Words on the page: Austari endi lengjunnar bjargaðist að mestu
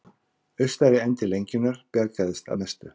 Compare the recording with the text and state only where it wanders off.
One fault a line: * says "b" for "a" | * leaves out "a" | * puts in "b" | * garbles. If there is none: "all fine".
all fine